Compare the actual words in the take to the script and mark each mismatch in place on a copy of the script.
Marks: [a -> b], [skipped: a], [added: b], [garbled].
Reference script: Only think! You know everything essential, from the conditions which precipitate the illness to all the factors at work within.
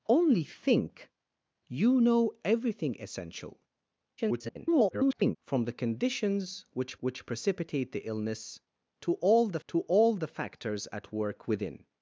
Only think! You know everything essential, [garbled] from the conditions which [added: which] precipitate the illness to all the [added: to all the] factors at work within.